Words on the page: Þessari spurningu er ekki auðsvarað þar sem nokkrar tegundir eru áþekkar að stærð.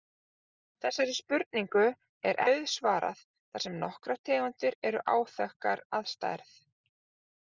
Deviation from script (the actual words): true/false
true